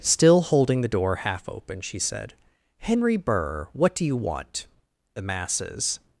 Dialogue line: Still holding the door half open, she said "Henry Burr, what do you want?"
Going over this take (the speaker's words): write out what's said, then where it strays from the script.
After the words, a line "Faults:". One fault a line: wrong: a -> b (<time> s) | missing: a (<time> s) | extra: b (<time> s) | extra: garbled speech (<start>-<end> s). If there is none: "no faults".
Still holding the door half open, she said "Henry Burr, what do you want?" The masses
Faults:
extra: The masses (5.1 s)